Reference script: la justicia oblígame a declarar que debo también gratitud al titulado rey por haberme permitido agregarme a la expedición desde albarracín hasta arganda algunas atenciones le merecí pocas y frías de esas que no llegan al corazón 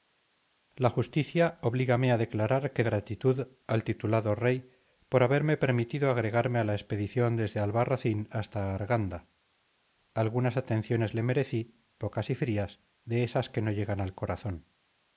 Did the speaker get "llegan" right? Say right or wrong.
right